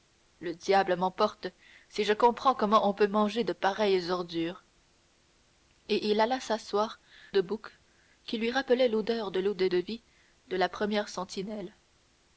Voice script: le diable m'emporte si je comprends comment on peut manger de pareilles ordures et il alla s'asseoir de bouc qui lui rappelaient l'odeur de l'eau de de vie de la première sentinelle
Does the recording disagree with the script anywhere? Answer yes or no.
no